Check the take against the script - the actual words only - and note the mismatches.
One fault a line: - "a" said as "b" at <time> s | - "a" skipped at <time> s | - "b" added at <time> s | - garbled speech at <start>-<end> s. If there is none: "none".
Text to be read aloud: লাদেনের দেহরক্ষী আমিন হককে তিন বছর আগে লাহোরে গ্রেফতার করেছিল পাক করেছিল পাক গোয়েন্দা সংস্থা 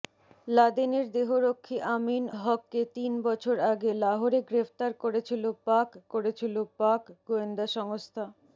none